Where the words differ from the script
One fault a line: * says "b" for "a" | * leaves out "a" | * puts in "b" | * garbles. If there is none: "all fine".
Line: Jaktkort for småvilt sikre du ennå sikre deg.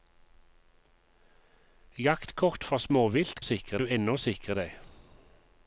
all fine